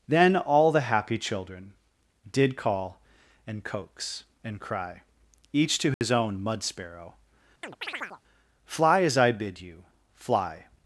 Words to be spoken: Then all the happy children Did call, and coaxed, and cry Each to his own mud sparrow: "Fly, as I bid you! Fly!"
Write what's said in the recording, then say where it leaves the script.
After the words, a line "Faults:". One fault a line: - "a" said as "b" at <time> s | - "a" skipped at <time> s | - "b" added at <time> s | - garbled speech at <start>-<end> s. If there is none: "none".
Then all the happy children Did call, and coax, and cry Each to his own mud sparrow: "Fly, as I bid you! Fly!"
Faults:
- "coaxed" said as "coax" at 3.6 s